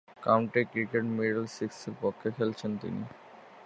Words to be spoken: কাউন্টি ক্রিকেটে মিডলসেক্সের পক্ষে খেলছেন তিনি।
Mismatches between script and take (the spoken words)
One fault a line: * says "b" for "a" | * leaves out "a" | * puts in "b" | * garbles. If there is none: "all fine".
all fine